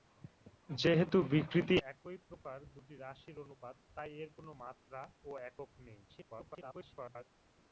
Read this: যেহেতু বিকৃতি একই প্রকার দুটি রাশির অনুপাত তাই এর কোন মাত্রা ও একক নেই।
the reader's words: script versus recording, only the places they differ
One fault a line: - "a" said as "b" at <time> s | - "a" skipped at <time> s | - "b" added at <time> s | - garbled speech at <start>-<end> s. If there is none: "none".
- garbled speech at 6.1-7.2 s